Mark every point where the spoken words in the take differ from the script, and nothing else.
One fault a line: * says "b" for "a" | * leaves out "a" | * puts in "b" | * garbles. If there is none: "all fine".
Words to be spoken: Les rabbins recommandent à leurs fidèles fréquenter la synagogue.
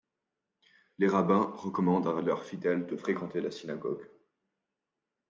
* puts in "de"